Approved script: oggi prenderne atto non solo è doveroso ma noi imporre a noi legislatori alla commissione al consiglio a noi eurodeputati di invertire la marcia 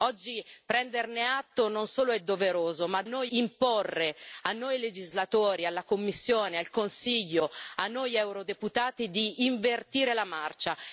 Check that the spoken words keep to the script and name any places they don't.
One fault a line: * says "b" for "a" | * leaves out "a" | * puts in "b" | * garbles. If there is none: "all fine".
all fine